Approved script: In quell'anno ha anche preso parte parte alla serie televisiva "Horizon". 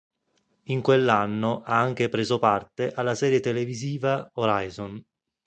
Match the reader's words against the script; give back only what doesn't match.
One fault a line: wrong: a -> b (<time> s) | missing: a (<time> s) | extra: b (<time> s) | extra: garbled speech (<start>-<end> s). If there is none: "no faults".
missing: parte (2.9 s)